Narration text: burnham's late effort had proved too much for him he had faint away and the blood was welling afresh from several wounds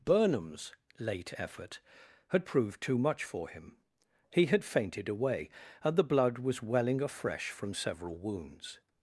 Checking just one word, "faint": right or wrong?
wrong